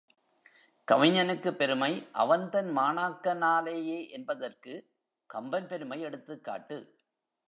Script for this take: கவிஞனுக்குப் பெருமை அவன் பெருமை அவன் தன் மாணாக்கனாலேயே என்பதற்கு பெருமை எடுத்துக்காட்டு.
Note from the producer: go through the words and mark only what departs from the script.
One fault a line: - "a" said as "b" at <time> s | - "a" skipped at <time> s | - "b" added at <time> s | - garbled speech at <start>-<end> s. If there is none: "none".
- "பெருமை அவன்" skipped at 2.5 s
- "கம்பன்" added at 5.3 s